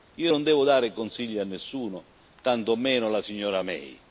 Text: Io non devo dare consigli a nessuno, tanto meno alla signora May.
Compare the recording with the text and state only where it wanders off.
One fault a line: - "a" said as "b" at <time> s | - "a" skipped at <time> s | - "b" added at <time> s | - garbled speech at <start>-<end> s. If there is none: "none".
none